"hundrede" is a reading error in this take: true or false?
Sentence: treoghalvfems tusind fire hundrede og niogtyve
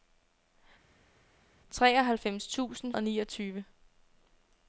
true